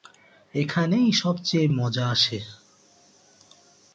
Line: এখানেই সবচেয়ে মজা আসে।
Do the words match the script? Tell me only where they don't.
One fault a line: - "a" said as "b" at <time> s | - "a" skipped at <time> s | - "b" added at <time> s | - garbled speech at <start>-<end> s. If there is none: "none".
none